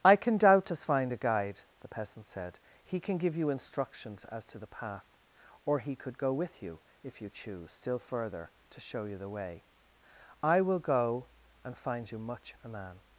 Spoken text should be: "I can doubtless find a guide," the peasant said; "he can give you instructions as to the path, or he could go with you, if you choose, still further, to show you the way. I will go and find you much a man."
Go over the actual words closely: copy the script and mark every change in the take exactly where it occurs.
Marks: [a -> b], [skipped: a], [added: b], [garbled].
"I can doubtless find a guide," the peasant said; "he can give you instructions as to the path, or he could go with you, if you choose, still further, to show you the way. I will go and find you much a man."